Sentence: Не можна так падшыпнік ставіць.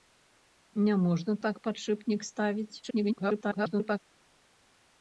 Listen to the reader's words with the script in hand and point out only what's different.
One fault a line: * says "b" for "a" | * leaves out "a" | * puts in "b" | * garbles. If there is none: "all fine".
* garbles